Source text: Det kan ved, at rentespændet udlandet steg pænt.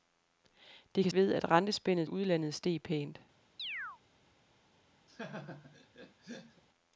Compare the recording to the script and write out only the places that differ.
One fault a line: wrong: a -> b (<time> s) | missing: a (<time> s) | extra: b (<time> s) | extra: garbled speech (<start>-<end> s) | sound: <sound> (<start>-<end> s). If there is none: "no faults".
sound: chirp (3.6-4.0 s)
sound: laugh (5.1-6.6 s)